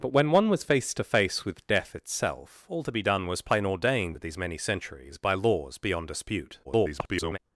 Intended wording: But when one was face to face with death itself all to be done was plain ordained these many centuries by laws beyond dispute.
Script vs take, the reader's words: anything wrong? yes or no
yes